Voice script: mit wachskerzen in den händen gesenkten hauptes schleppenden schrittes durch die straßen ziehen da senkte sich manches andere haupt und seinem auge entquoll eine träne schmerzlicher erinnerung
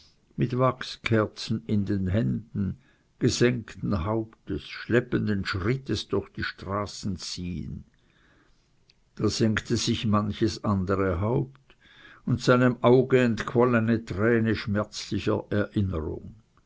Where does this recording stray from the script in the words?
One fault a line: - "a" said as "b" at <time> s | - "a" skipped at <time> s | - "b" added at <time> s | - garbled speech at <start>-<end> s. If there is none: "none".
none